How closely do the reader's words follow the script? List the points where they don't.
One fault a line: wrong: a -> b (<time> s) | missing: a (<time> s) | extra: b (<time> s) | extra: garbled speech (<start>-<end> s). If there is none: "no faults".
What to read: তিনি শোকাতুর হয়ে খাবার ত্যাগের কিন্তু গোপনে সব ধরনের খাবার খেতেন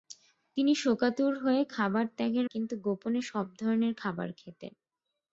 no faults